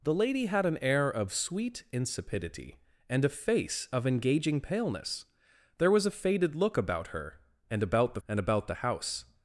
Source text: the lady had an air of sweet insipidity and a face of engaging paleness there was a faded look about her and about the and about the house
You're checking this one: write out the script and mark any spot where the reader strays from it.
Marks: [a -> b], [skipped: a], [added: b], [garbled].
the lady had an air of sweet insipidity and a face of engaging paleness there was a faded look about her and about the and about the house